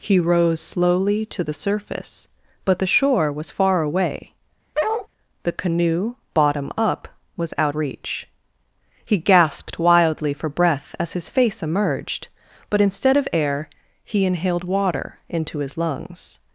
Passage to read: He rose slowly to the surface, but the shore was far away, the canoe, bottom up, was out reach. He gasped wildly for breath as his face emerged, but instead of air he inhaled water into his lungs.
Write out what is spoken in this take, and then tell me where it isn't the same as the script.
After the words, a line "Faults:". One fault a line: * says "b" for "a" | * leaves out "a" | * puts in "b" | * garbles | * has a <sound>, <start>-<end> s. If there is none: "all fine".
He rose slowly to the surface, but the shore was far away, the canoe, bottom up, was out reach. He gasped wildly for breath as his face emerged, but instead of air he inhaled water into his lungs.
Faults:
* has a bark, 4.7-5.1 s